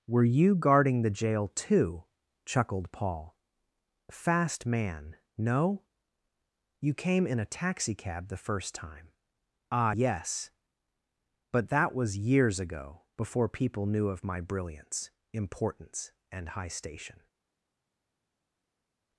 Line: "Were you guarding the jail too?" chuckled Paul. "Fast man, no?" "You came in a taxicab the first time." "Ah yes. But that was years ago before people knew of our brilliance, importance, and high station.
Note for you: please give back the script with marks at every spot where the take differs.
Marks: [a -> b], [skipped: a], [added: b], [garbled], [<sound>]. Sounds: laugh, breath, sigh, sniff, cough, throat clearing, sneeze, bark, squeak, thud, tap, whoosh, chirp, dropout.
"Were you guarding the jail too?" chuckled Paul. "Fast man, no?" "You came in a taxicab the first time." "Ah yes. But that was years ago before people knew of [our -> my] brilliance, importance, and high station.